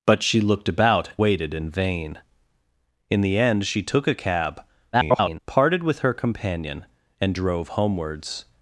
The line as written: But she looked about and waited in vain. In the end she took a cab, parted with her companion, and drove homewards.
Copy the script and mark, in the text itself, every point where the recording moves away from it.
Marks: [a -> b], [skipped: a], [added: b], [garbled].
But she looked about [skipped: and] waited in vain. In the end she took a cab, [garbled] parted with her companion, and drove homewards.